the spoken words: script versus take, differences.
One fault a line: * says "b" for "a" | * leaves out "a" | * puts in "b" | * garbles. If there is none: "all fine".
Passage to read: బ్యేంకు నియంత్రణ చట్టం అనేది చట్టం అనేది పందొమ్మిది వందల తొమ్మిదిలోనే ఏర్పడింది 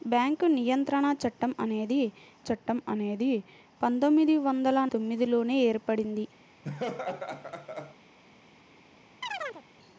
all fine